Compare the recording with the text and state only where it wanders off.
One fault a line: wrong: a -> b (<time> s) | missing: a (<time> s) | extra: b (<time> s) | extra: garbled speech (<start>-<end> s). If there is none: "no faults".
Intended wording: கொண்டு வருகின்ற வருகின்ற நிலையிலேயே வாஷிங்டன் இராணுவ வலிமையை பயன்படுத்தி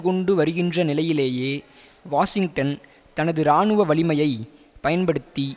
missing: வருகின்ற (0.8 s)
extra: தனது (3.1 s)